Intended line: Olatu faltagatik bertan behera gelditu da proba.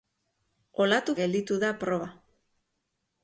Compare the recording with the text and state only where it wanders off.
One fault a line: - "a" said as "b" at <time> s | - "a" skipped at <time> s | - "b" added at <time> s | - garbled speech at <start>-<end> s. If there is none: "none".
- "faltagatik bertan behera" skipped at 1.1 s